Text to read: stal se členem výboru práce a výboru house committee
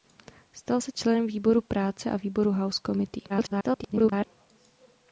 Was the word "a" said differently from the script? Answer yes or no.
no